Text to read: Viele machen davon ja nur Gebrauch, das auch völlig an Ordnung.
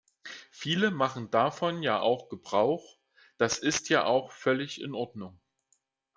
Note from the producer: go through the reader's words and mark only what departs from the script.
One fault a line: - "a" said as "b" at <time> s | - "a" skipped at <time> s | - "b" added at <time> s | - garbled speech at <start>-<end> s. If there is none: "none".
- "nur" said as "auch" at 2.0 s
- "ist ja" added at 3.6 s
- "an" said as "in" at 4.8 s